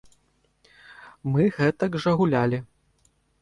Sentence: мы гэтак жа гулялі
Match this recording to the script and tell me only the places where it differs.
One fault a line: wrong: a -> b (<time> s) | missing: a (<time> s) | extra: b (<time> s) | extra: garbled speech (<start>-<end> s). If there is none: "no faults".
no faults